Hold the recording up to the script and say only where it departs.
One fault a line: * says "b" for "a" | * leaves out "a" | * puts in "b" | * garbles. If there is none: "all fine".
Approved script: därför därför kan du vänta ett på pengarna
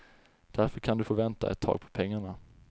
* leaves out "därför"
* puts in "få"
* puts in "tag"